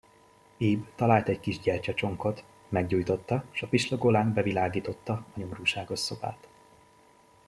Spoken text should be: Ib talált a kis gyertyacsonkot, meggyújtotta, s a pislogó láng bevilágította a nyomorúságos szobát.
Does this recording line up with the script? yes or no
no